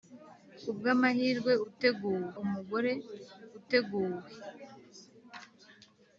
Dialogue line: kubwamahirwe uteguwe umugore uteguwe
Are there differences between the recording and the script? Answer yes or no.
no